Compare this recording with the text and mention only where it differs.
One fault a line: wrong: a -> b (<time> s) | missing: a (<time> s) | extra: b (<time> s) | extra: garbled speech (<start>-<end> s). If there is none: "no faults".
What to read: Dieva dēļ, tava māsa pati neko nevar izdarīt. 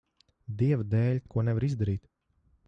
missing: tava māsa pati (1.2 s)